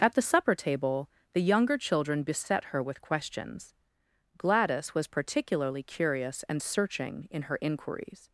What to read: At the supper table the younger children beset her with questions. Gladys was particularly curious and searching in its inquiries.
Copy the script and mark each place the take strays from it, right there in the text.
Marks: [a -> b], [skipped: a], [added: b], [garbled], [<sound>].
At the supper table the younger children beset her with questions. Gladys was particularly curious and searching in [its -> her] inquiries.